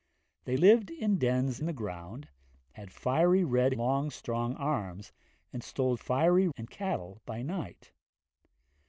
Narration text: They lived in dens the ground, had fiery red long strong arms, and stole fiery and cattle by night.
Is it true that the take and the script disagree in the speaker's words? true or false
false